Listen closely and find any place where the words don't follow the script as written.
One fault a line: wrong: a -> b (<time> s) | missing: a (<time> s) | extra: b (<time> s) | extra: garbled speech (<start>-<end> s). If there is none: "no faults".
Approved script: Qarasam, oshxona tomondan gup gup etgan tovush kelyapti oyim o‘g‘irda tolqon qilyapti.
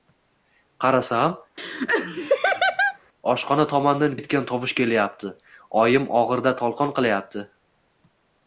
missing: gup gup (4.2 s)